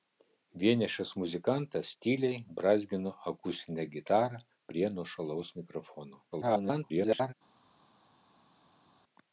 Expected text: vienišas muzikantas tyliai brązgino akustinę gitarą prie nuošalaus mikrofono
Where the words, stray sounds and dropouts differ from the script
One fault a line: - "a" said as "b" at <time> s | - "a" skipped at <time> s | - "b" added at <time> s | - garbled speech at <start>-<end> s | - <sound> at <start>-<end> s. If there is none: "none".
- garbled speech at 6.3-7.3 s